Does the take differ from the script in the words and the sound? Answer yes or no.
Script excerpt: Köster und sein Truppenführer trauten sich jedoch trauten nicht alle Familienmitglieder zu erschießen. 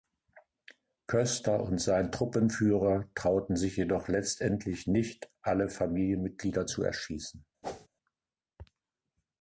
yes